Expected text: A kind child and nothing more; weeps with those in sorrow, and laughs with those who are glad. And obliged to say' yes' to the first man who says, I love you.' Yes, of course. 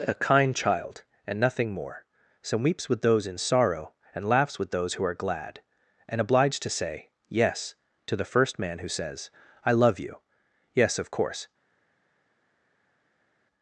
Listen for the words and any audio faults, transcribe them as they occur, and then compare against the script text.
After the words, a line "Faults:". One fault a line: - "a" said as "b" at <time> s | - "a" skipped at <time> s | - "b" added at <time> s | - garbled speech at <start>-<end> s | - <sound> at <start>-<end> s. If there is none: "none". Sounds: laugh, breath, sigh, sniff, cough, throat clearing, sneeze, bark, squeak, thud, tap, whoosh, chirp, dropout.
A kind child and nothing more; some weeps with those in sorrow, and laughs with those who are glad. And obliged to say' yes' to the first man who says, I love you.' Yes, of course.
Faults:
- "some" added at 2.4 s